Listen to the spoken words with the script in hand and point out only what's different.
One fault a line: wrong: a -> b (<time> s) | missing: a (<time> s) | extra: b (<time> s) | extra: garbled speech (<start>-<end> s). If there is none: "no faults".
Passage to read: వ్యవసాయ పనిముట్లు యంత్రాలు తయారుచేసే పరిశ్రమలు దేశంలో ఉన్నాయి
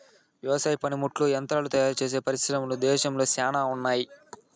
extra: శ్యానా (3.3 s)